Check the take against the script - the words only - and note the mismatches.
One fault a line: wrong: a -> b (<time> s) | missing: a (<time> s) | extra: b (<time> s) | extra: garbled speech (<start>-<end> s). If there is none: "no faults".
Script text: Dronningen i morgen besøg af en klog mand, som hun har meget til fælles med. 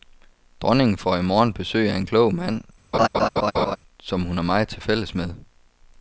extra: får (1.0 s)